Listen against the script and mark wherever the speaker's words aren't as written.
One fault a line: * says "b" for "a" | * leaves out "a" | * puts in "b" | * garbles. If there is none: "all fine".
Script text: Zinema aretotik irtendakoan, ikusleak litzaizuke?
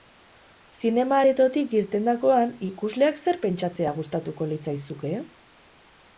* puts in "zer pentsatzea gustatuko"